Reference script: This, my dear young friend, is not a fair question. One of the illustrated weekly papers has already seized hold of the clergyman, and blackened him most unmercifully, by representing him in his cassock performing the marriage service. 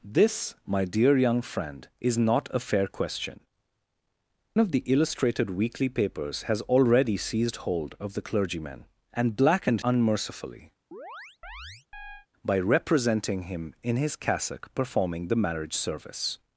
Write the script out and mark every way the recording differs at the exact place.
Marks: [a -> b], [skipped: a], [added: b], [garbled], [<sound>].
This, my dear young friend, is not a fair question. [skipped: One] of the illustrated weekly papers has already seized hold of the clergyman, and blackened [skipped: him most] unmercifully, [chirp] by representing him in his cassock performing the marriage service.